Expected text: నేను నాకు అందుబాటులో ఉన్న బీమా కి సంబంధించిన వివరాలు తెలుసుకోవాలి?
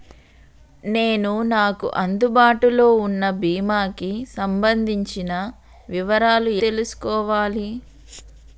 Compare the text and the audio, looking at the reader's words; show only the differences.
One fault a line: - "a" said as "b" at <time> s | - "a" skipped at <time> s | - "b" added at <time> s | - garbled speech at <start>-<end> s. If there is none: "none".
none